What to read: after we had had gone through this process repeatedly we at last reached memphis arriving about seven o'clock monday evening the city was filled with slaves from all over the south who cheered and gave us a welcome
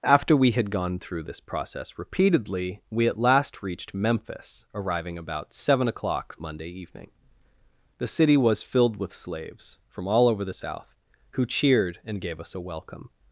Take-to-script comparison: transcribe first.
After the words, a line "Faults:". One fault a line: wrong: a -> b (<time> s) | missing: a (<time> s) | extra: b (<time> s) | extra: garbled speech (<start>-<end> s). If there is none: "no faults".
after we had gone through this process repeatedly we at last reached memphis arriving about seven o'clock monday evening the city was filled with slaves from all over the south who cheered and gave us a welcome
Faults:
missing: had (0.7 s)